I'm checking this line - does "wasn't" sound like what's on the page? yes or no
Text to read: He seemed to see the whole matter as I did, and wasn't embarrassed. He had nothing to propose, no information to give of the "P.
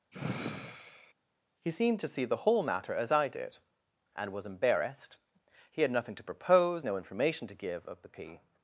no